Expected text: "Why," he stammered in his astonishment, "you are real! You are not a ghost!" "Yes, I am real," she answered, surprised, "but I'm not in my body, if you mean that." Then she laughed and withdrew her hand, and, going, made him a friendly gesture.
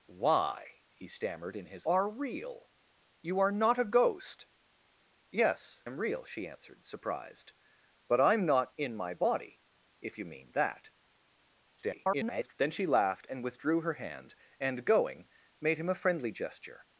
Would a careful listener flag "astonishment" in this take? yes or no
yes